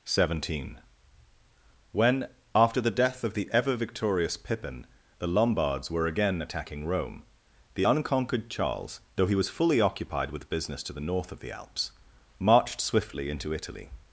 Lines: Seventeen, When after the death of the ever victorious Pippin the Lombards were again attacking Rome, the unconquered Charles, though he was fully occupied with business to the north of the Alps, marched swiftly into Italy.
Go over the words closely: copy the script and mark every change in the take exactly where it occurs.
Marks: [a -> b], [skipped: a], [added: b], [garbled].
Seventeen, When after the death of the ever victorious Pippin the Lombards were again attacking Rome, the unconquered Charles, though he was fully occupied with business to the north of the Alps, marched swiftly into Italy.